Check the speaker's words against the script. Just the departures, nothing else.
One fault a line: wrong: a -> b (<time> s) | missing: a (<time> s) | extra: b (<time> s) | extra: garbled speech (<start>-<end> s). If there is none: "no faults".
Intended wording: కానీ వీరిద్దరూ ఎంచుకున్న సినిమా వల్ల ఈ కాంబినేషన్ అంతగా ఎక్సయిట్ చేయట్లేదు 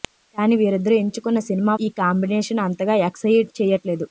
missing: వల్ల (1.7 s)